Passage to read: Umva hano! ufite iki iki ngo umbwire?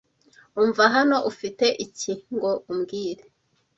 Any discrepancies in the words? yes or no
yes